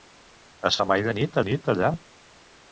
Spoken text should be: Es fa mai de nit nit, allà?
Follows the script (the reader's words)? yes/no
yes